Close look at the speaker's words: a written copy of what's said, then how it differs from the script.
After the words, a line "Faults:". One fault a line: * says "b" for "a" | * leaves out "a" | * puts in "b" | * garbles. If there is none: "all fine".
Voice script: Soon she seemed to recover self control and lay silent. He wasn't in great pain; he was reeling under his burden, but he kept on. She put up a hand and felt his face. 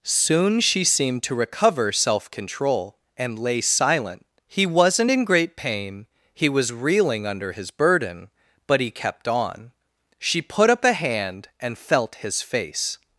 Soon she seemed to recover self control and lay silent. He wasn't in great pain; he was reeling under his burden, but he kept on. She put up a hand and felt his face.
Faults:
all fine